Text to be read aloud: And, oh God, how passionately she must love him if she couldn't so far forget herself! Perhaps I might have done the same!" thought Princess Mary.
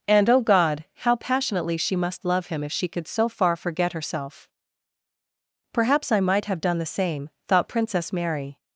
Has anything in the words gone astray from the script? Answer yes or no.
yes